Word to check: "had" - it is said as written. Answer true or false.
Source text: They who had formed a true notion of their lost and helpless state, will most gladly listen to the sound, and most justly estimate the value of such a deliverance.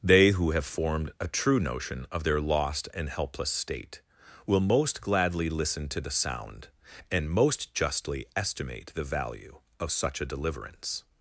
false